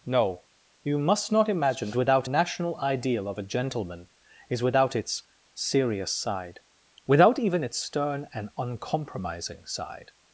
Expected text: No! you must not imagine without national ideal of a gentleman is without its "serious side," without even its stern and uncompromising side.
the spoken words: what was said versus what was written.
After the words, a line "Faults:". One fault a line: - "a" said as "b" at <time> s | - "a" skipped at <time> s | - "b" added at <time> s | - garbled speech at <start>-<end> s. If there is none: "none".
No! you must not imagine without national ideal of a gentleman is without its "serious side," without even its stern and uncompromising side.
Faults:
none